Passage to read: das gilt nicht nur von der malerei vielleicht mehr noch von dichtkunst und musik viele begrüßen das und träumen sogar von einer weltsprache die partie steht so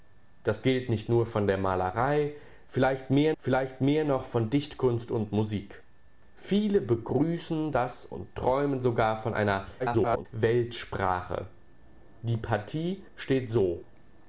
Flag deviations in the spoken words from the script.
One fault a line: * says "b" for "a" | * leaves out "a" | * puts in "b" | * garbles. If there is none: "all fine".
* puts in "vielleicht mehr"
* garbles